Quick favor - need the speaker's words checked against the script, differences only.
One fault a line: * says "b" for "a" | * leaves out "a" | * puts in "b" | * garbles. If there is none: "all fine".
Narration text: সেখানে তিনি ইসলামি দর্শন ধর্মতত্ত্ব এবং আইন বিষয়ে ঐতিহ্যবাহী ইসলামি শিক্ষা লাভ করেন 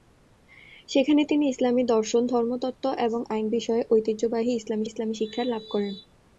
* puts in "ইসলামি"